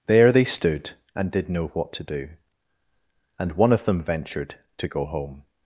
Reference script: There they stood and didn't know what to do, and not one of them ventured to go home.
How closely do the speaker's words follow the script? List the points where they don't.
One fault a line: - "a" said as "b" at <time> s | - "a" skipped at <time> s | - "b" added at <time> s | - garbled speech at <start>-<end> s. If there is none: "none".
- "didn't" said as "did" at 1.3 s
- "not" skipped at 3.5 s